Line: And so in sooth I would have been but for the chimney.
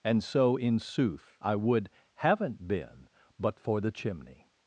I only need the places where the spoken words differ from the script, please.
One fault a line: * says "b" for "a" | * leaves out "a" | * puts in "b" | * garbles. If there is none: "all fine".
* says "haven't" for "have"